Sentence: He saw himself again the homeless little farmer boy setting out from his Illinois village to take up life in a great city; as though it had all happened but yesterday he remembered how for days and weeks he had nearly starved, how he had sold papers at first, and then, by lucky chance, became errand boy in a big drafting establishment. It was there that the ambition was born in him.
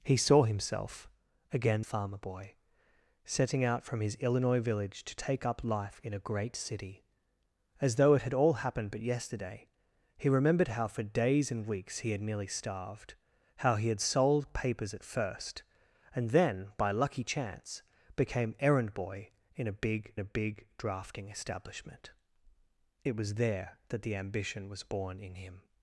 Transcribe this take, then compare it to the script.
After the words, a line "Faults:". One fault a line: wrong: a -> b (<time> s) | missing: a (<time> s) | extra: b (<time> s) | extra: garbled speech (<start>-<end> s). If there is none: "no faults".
He saw himself again farmer boy setting out from his Illinois village to take up life in a great city; as though it had all happened but yesterday he remembered how for days and weeks he had nearly starved, how he had sold papers at first, and then, by lucky chance, became errand boy in a big a big drafting establishment. It was there that the ambition was born in him.
Faults:
missing: the homeless little (1.9 s)
extra: a big (20.2 s)